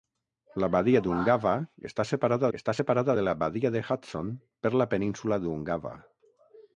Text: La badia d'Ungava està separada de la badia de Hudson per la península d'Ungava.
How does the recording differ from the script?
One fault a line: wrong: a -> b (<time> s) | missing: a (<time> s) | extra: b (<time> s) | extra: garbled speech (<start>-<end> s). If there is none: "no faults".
extra: està separada (2.6 s)